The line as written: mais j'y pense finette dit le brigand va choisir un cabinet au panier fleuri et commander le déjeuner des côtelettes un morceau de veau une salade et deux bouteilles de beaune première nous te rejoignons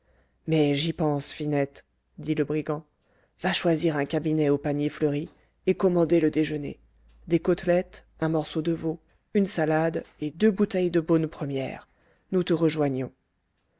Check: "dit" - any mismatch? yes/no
no